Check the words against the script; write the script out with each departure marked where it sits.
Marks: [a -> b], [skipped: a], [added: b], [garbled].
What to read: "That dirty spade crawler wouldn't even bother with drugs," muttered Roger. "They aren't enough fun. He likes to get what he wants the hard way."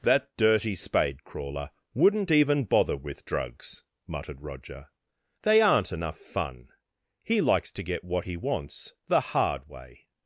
"That dirty spade crawler wouldn't even bother with drugs," muttered Roger. "They aren't enough fun. He likes to get what he wants the hard way."